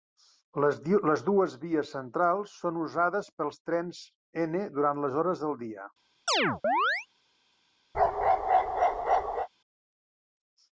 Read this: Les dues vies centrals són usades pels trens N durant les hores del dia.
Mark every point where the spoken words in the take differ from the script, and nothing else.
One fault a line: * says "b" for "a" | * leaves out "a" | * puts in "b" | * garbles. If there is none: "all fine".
all fine